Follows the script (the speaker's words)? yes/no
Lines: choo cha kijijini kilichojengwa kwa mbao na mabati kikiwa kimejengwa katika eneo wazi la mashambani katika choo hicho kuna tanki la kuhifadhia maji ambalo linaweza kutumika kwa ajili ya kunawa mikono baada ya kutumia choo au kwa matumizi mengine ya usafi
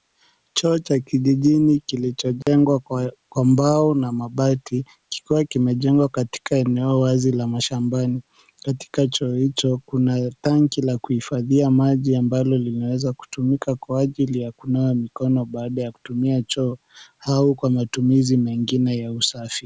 yes